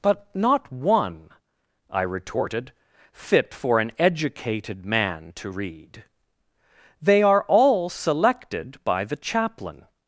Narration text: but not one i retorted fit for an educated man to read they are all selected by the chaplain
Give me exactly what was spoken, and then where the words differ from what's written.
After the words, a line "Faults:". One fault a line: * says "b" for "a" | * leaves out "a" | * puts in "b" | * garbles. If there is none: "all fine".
but not one i retorted fit for an educated man to read they are all selected by the chaplain
Faults:
all fine